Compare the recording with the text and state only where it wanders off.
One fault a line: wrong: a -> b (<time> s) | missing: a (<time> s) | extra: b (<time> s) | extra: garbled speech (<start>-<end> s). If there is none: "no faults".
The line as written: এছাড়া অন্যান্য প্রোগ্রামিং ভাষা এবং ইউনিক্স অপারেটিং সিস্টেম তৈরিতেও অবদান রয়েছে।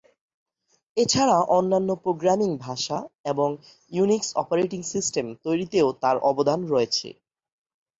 extra: তার (6.0 s)